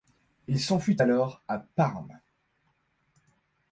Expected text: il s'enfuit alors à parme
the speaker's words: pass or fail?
pass